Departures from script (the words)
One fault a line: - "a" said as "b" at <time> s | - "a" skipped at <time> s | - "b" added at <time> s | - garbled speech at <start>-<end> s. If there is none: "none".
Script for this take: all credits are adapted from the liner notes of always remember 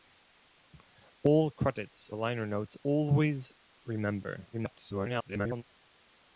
- "are adapted from" skipped at 2.1 s
- "of" skipped at 2.7 s
- garbled speech at 4.5-5.6 s